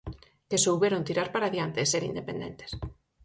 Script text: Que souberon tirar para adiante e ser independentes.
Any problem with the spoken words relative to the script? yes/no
no